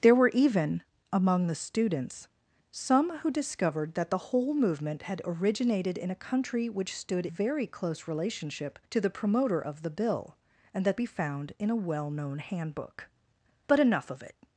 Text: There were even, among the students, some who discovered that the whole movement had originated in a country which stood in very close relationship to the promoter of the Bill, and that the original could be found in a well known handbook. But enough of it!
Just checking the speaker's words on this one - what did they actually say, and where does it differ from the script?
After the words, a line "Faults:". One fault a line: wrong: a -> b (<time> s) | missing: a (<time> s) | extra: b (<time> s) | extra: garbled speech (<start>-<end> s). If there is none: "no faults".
There were even, among the students, some who discovered that the whole movement had originated in a country which stood very close relationship to the promoter of the Bill, and that be found in a well known handbook. But enough of it!
Faults:
missing: in (7.3 s)
missing: the original could (11.0 s)